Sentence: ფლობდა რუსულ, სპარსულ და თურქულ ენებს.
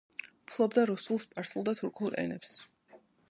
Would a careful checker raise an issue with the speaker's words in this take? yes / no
no